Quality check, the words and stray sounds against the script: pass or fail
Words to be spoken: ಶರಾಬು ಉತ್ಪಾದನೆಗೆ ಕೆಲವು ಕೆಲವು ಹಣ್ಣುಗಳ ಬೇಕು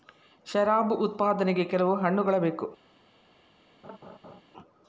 fail